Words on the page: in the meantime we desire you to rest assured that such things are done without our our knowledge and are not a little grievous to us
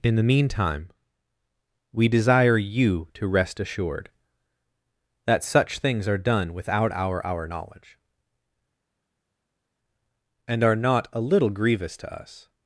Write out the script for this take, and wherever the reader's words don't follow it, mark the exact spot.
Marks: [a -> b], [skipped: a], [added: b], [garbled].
in the meantime we desire you to rest assured that such things are done without our our knowledge and are not a little grievous to us